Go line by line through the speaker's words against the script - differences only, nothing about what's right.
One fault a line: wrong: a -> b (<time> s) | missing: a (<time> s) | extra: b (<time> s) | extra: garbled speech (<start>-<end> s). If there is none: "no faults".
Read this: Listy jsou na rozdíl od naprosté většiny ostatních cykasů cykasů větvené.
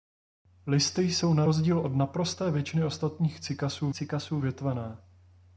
no faults